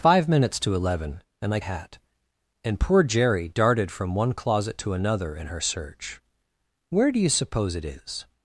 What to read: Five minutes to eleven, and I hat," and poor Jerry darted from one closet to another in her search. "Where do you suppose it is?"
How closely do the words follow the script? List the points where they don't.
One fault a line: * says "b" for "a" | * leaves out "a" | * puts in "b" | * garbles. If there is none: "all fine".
all fine